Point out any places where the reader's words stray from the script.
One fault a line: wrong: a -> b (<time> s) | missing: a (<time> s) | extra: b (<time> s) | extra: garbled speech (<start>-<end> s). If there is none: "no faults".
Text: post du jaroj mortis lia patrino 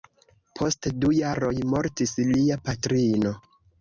no faults